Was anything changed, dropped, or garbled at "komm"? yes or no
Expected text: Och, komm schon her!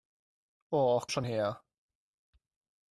yes